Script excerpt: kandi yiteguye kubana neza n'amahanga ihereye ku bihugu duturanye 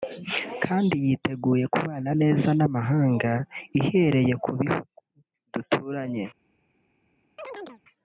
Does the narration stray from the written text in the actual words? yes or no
no